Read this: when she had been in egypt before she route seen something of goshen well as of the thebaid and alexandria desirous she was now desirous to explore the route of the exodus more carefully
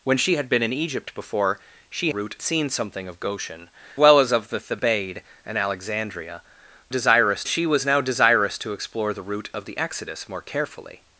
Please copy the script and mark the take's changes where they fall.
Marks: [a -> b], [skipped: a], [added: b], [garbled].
when she had been in egypt before she route seen something of goshen well as of the thebaid and alexandria desirous she was now desirous to explore the route of the exodus more carefully